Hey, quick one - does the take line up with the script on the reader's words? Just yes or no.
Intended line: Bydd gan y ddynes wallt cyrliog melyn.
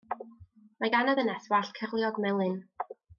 no